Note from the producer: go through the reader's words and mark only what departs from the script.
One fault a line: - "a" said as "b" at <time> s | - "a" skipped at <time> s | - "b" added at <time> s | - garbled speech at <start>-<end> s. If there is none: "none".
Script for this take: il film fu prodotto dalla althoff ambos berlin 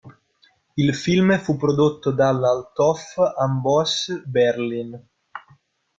none